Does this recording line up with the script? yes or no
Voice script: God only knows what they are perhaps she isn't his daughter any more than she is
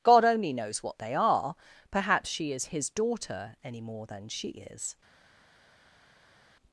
no